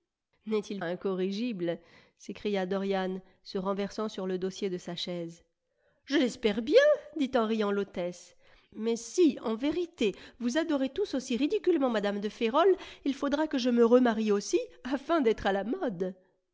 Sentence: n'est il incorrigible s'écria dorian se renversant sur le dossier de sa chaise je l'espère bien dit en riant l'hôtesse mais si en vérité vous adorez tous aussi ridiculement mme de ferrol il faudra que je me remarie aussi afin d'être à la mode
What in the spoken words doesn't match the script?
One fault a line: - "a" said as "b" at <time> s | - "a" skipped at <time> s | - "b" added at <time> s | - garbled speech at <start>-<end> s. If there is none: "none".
none